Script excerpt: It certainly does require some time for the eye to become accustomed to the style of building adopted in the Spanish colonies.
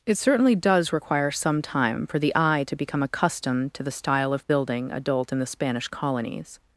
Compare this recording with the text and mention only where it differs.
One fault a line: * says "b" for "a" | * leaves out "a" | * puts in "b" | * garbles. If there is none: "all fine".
* says "adult" for "adopted"